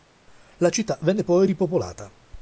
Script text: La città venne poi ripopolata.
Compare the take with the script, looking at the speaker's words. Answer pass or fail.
pass